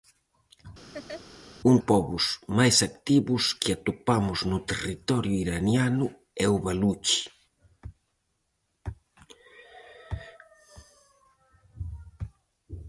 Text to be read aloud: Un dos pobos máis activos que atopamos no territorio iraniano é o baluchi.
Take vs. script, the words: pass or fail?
fail